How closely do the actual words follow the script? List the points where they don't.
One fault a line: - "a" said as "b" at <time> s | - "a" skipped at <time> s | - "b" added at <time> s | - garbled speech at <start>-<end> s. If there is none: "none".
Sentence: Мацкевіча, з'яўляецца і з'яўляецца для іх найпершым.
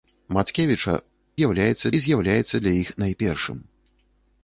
none